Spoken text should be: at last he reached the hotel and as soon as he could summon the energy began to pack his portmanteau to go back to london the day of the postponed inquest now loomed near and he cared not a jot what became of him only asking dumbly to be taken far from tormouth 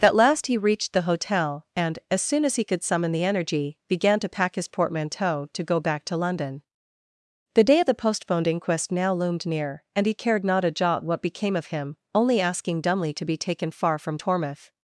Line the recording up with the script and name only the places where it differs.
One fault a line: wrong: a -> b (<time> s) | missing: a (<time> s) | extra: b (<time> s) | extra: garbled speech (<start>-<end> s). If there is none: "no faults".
no faults